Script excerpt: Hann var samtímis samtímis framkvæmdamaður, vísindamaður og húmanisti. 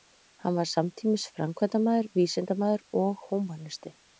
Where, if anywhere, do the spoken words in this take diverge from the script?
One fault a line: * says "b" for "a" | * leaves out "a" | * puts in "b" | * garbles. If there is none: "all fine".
* leaves out "samtímis"